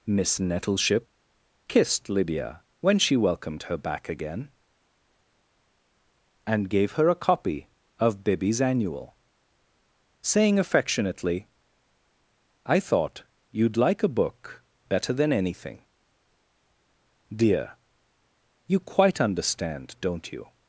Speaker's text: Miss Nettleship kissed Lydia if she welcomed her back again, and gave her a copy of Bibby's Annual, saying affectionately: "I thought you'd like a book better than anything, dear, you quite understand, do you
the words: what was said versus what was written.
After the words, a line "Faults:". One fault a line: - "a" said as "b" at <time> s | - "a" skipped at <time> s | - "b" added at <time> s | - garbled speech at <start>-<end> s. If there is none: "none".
Miss Nettleship kissed Lydia when she welcomed her back again, and gave her a copy of Bibby's Annual, saying affectionately: "I thought you'd like a book better than anything, dear, you quite understand, don't you
Faults:
- "if" said as "when" at 2.8 s
- "do" said as "don't" at 20.0 s